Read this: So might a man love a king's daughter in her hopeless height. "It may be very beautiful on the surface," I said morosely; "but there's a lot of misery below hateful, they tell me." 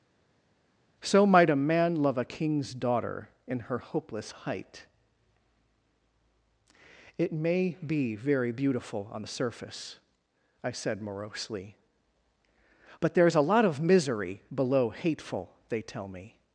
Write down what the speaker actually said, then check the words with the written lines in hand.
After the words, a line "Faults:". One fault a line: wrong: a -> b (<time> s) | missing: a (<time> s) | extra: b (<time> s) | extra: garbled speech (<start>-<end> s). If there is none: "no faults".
So might a man love a king's daughter in her hopeless height. "It may be very beautiful on the surface," I said morosely; "but there's a lot of misery below hateful, they tell me."
Faults:
no faults